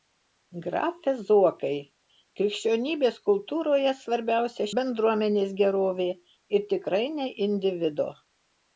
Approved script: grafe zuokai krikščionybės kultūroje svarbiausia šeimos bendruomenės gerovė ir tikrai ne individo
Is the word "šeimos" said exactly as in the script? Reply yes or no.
no